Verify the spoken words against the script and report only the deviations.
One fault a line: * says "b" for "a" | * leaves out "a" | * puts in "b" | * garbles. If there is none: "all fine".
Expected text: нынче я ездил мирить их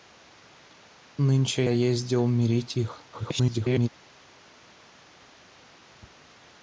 * leaves out "я"
* garbles